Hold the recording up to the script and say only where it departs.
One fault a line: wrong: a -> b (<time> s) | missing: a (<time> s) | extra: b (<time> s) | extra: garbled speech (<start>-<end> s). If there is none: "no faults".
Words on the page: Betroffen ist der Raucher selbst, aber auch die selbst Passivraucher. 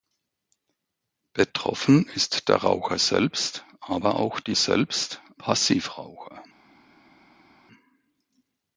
no faults